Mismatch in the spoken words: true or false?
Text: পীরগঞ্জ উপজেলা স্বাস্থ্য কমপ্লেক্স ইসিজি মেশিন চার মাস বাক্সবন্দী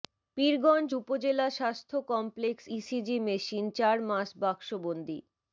false